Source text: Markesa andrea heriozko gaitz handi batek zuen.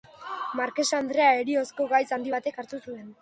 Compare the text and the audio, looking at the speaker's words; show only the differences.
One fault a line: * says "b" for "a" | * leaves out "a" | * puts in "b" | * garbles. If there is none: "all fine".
* puts in "hartu"